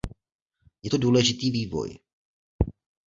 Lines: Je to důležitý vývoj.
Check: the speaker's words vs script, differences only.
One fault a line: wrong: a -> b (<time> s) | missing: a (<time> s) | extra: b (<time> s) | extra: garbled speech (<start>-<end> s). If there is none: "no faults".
no faults